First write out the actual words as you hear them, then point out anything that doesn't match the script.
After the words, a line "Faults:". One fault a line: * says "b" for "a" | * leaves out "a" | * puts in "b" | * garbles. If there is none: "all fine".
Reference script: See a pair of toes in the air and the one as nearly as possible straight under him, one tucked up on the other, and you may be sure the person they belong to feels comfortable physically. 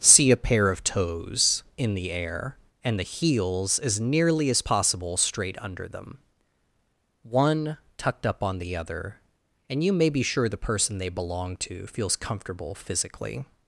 See a pair of toes in the air and the heels as nearly as possible straight under them, one tucked up on the other, and you may be sure the person they belong to feels comfortable physically.
Faults:
* says "heels" for "one"
* says "them" for "him"